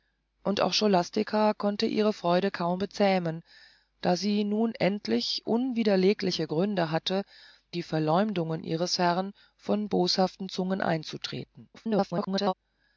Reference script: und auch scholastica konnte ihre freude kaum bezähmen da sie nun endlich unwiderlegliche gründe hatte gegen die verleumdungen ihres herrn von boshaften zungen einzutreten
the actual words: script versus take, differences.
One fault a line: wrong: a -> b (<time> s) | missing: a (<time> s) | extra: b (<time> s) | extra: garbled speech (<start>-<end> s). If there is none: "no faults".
missing: gegen (7.3 s)
extra: garbled speech (11.7-12.5 s)